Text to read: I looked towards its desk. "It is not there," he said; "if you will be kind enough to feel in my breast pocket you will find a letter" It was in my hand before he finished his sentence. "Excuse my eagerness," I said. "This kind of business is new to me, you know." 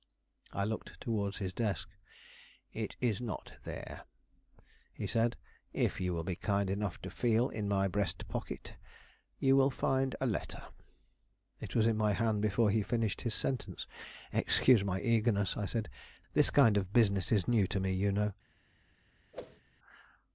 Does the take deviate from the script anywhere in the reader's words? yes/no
yes